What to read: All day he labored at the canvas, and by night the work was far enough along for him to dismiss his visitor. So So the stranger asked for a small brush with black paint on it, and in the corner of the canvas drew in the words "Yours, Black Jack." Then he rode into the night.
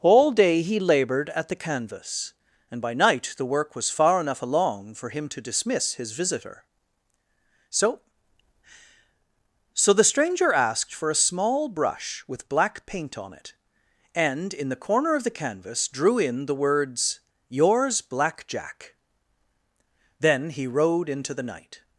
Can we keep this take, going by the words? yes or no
yes